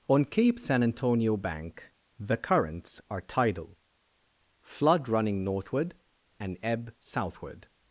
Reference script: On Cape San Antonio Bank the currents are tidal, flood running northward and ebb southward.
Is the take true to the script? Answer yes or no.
yes